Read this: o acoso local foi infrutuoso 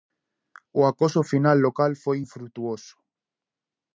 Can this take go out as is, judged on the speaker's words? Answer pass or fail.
fail